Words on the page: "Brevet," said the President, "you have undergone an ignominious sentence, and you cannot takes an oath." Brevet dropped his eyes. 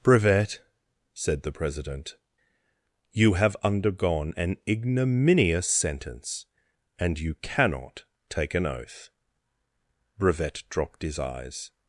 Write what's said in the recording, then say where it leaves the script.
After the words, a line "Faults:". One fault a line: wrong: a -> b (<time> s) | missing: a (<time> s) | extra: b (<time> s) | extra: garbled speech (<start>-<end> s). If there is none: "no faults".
"Brevet," said the President, "you have undergone an ignominious sentence, and you cannot take an oath." Brevet dropped his eyes.
Faults:
wrong: takes -> take (8.3 s)